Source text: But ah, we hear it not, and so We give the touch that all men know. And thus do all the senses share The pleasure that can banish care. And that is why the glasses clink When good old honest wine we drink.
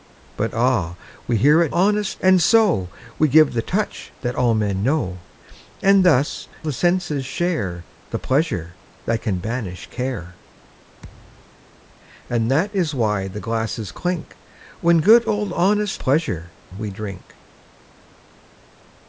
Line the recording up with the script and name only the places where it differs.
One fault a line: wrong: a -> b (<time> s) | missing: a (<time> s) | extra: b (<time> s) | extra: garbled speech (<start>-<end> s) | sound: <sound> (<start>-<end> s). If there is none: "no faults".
wrong: not -> honest (1.7 s)
missing: do all (6.5 s)
sound: thud (11.0-11.6 s)
wrong: wine -> pleasure (16.0 s)